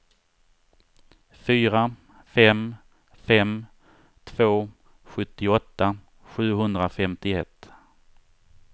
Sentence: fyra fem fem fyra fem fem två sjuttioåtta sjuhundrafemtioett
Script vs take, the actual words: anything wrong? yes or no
yes